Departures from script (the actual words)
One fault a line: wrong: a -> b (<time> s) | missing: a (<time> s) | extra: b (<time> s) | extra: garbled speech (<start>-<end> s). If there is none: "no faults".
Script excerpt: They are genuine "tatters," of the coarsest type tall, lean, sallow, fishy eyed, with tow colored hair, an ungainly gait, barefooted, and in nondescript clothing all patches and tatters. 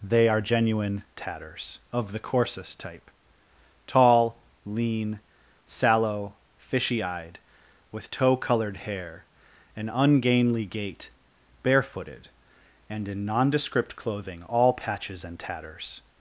no faults